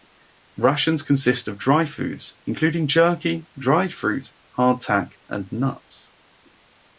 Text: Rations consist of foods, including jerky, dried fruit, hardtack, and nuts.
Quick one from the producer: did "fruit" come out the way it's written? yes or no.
yes